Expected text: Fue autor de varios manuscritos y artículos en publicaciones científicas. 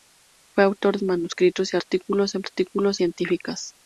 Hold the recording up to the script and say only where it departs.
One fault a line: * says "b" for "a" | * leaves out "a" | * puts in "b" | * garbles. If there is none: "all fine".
* leaves out "de varios"
* says "artículos" for "publicaciones"